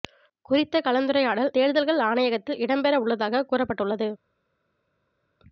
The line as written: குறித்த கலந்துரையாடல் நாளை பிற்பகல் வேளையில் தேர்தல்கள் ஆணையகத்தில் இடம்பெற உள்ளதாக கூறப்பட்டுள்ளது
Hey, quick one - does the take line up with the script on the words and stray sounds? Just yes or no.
no